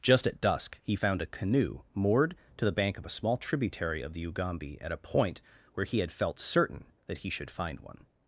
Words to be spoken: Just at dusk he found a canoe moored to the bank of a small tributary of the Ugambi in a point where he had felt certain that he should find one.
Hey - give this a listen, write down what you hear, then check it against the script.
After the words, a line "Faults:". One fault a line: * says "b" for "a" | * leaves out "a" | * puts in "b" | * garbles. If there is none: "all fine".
Just at dusk he found a canoe moored to the bank of a small tributary of the Ugambi at a point where he had felt certain that he should find one.
Faults:
* says "at" for "in"